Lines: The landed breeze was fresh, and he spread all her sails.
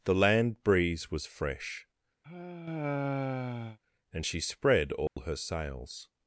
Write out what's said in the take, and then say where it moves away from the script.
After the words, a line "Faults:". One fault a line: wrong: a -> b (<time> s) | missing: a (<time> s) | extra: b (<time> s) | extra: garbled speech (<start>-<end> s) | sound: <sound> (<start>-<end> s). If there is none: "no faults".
The land breeze was fresh, and she spread all her sails.
Faults:
wrong: landed -> land (0.1 s)
sound: sigh (2.2-3.8 s)
wrong: he -> she (4.2 s)
sound: dropout (5.1-5.2 s)